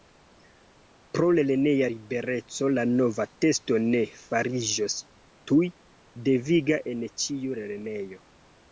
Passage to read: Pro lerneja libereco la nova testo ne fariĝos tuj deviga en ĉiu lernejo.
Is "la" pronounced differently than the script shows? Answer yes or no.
no